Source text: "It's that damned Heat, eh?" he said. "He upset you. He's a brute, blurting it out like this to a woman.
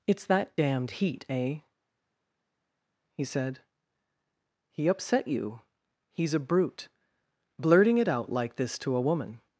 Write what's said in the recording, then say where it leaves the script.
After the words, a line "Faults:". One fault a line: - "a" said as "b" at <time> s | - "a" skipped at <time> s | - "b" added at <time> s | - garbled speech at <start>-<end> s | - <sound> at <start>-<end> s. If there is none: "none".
"It's that damned Heat, eh?" he said. "He upset you. He's a brute, blurting it out like this to a woman.
Faults:
none